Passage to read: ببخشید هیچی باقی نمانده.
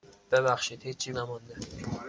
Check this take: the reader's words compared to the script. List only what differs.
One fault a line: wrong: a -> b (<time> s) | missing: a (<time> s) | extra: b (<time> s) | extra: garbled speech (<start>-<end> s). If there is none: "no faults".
missing: باقی (1.1 s)